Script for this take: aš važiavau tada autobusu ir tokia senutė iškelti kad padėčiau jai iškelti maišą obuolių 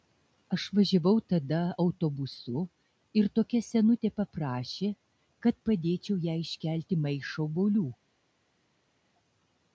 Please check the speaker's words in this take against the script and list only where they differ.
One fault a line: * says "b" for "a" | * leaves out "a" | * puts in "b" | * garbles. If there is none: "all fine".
* says "paprašė" for "iškelti"